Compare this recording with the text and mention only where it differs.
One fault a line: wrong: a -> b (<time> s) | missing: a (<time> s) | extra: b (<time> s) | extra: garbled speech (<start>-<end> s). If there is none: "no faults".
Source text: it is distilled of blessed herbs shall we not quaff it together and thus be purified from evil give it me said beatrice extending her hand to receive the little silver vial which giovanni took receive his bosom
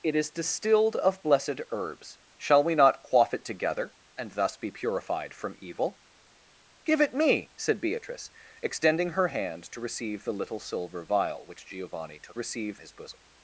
no faults